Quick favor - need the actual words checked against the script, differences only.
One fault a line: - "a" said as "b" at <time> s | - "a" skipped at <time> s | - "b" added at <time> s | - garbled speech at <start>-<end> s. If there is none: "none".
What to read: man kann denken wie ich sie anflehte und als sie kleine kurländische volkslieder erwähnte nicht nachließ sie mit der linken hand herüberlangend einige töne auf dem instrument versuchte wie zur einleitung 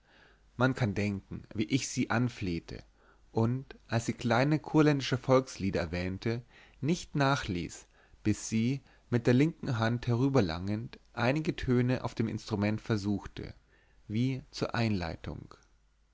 - "bis" added at 8.2 s